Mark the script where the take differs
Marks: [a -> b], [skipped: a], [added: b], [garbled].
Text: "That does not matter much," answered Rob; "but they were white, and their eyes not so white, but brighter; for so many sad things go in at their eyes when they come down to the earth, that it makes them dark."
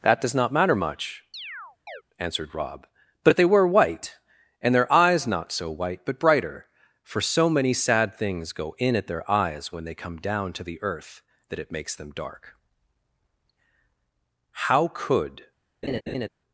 "That does not matter much," answered Rob; "but they were white, and their eyes not so white, but brighter; for so many sad things go in at their eyes when they come down to the earth, that it makes them dark." [added: How could]